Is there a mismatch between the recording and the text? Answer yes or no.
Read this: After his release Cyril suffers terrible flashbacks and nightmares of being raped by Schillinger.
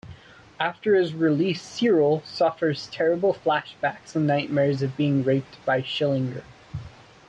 no